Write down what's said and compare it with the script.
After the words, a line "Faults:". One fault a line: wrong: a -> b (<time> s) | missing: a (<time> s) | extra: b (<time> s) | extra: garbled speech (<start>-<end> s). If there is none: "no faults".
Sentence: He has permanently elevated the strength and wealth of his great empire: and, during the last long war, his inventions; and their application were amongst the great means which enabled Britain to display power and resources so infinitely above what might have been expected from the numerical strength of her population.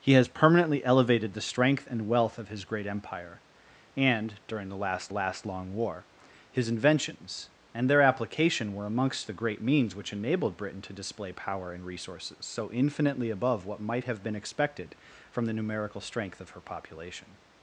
He has permanently elevated the strength and wealth of his great empire: and, during the last last long war, his inventions; and their application were amongst the great means which enabled Britain to display power and resources so infinitely above what might have been expected from the numerical strength of her population.
Faults:
extra: last (5.1 s)